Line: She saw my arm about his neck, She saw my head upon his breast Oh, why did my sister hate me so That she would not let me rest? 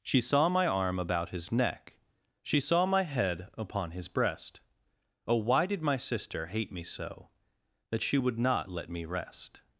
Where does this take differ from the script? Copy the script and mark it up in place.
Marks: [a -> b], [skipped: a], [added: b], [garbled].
She saw my arm about his neck, She saw my head upon his breast Oh, why did my sister hate me so That she would not let me rest?